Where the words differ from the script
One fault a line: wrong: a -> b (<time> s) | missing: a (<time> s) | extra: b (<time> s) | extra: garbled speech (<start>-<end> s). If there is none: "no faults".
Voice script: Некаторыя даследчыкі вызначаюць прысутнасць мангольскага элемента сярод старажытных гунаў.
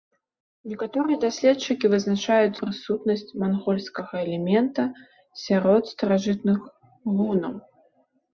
no faults